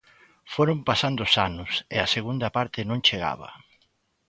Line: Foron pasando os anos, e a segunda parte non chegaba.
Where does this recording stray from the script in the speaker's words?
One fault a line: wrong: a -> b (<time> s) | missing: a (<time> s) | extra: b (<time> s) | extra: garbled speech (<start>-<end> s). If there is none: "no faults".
no faults